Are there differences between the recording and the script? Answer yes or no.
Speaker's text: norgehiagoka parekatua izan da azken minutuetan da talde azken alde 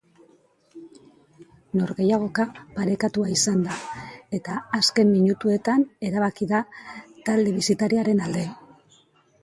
yes